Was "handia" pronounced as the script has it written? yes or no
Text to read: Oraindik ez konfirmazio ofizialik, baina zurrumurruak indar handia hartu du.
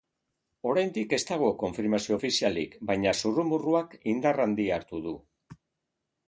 yes